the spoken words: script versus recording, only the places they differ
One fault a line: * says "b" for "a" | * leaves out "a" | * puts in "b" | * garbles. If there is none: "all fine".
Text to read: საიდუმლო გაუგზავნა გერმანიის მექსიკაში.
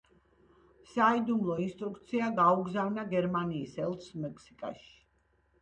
* puts in "ინსტრუქცია"
* puts in "ელჩს"